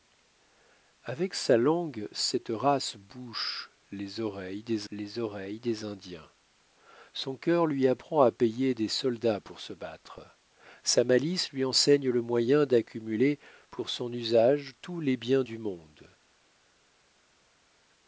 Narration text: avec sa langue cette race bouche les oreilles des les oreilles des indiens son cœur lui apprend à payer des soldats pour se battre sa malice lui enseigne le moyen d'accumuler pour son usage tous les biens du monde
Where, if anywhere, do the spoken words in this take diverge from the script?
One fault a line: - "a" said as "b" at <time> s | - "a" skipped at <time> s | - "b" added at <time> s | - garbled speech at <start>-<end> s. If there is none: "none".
none